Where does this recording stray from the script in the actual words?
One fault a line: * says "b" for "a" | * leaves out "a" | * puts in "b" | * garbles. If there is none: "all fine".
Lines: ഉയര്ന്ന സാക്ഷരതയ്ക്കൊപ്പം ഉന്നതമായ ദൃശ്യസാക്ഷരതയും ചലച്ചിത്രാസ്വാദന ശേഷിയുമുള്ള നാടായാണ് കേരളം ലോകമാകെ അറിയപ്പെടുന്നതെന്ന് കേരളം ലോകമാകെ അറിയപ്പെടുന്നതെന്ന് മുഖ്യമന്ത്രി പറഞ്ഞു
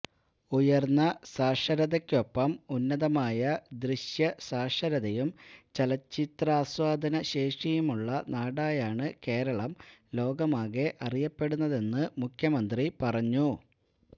* leaves out "കേരളം ലോകമാകെ അറിയപ്പെടുന്നതെന്ന്"